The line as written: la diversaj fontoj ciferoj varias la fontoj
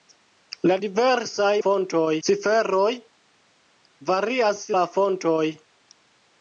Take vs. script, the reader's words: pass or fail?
pass